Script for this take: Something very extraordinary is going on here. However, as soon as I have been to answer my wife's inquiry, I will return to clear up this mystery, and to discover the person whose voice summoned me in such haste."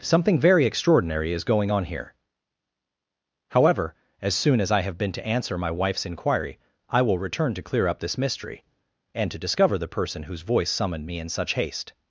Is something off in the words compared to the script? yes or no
no